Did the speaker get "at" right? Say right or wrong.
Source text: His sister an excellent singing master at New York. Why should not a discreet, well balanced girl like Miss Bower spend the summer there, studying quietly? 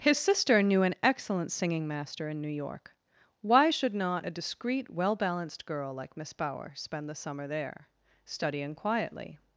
wrong